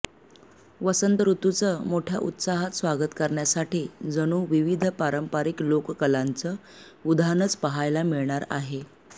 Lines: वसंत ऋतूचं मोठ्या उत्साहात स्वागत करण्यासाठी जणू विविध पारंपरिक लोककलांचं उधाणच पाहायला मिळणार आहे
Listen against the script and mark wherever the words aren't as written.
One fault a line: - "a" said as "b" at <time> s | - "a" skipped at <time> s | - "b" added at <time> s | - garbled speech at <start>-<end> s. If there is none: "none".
none